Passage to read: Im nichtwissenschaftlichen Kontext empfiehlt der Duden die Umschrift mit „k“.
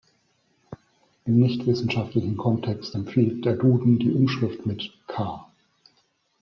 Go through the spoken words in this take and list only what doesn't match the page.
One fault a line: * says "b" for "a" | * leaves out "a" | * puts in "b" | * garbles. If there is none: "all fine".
all fine